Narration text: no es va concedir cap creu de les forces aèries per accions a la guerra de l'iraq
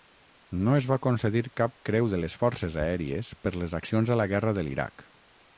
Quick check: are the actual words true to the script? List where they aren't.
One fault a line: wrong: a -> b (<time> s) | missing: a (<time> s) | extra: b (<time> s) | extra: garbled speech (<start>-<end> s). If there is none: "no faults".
extra: les (3.6 s)